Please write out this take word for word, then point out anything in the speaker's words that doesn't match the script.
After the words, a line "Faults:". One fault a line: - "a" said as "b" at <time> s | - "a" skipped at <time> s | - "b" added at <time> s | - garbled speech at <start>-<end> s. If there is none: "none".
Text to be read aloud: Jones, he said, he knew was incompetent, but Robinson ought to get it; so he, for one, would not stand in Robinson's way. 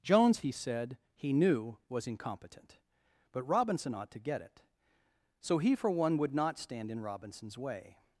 Jones, he said, he knew was incompetent, but Robinson ought to get it; so he, for one, would not stand in Robinson's way.
Faults:
none